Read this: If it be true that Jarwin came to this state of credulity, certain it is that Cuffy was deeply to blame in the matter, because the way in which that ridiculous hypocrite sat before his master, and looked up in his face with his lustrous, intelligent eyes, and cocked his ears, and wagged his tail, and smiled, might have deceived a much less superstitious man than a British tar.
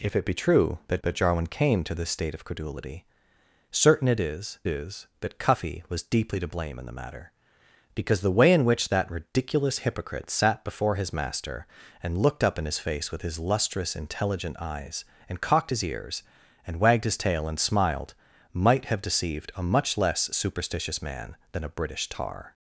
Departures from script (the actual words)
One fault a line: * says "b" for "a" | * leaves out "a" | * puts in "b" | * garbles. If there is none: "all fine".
* puts in "that"
* puts in "is"